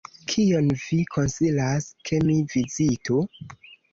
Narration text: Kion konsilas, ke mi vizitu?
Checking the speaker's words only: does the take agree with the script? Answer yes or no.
no